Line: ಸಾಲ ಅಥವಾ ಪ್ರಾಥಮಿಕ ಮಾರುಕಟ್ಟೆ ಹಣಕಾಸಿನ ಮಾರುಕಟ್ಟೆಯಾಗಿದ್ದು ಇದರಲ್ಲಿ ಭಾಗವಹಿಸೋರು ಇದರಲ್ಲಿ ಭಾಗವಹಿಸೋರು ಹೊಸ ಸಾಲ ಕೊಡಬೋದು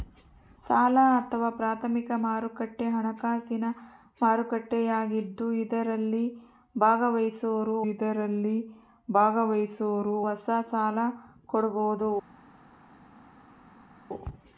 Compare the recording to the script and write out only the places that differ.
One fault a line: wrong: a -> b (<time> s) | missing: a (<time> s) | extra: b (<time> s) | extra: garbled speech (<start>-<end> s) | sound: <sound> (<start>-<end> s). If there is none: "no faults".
no faults